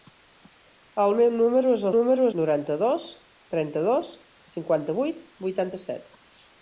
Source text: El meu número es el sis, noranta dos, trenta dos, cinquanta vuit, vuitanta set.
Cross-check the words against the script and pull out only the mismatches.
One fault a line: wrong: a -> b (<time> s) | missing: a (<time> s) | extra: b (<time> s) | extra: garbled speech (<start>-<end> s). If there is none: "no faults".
wrong: sis -> número (1.9 s)